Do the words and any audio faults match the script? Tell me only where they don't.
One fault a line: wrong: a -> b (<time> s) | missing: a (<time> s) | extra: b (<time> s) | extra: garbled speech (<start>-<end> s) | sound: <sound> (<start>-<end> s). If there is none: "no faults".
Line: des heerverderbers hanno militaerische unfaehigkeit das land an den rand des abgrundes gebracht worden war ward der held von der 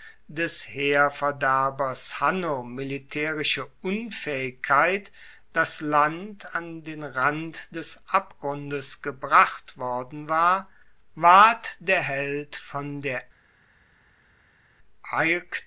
no faults